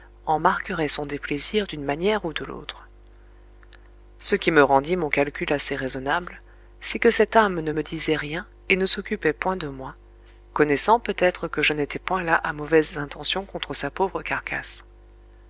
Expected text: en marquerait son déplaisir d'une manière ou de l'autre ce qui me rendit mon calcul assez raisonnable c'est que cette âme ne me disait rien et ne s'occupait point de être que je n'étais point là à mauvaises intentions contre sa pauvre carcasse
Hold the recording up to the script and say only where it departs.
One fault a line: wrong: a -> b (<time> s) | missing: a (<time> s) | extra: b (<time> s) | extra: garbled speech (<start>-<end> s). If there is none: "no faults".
extra: moi connaissant peut (9.7 s)